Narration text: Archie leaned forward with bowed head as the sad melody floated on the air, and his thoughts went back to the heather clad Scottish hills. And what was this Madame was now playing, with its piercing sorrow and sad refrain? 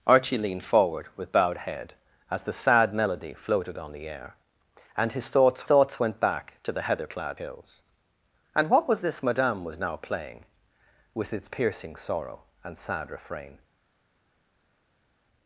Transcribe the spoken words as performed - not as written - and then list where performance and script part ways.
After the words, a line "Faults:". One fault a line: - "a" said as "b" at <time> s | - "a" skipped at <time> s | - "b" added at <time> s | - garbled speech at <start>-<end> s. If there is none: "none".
Archie leaned forward with bowed head as the sad melody floated on the air, and his thoughts thoughts went back to the heather clad Hills. And what was this Madame was now playing, with its piercing sorrow and sad refrain?
Faults:
- "thoughts" added at 5.6 s
- "Scottish" skipped at 7.4 s